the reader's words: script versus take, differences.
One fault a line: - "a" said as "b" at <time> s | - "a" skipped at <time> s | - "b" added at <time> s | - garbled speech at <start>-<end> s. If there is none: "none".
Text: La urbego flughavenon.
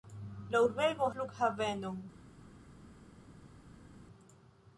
none